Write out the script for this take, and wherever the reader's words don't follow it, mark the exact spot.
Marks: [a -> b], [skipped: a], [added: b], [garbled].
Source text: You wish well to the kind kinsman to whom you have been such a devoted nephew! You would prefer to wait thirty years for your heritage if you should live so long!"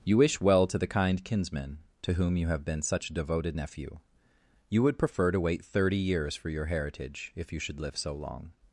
You wish well to the kind kinsman to whom you have been such a devoted nephew! You would prefer to wait thirty years for your heritage if you should live so long!"